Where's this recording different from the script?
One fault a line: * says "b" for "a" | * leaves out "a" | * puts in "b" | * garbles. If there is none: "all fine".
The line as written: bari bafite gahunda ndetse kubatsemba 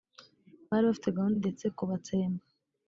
all fine